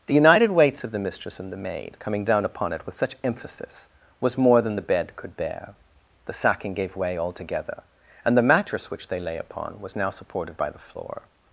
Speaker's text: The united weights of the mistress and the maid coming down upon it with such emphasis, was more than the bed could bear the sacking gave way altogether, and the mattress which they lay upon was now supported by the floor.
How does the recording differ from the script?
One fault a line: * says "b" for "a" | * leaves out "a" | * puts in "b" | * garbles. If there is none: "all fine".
all fine